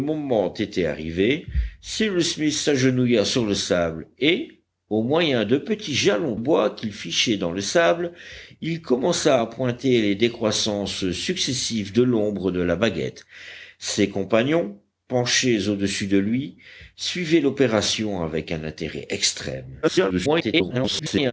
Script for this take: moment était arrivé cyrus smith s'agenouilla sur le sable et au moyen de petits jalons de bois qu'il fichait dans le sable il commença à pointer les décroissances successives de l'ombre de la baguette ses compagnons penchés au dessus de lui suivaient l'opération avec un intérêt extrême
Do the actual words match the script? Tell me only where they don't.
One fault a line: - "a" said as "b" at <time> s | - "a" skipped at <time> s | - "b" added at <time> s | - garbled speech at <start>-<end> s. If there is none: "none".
- "de" skipped at 6.3 s
- garbled speech at 19.8-21.3 s